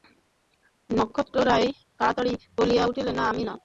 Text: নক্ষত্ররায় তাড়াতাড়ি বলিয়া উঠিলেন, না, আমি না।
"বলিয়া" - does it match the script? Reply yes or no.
yes